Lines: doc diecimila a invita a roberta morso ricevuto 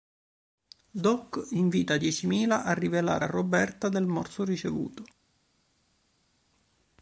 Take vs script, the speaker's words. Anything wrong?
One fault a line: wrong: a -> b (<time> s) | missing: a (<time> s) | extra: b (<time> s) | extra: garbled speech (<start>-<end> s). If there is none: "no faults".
extra: invita (1.5 s)
wrong: invita -> rivelare (2.7 s)
extra: del (3.9 s)